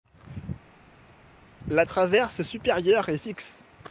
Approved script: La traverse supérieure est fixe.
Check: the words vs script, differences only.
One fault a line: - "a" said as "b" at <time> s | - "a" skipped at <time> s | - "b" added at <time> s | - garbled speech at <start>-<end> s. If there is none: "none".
none